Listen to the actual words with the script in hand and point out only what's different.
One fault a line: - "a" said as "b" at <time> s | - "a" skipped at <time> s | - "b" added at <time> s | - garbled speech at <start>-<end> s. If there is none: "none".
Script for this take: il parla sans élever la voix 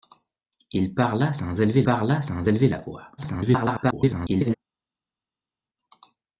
- "parla sans élever" added at 1.8 s
- garbled speech at 3.2-4.5 s